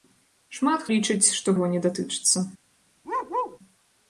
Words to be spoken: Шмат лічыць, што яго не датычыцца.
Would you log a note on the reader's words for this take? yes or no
no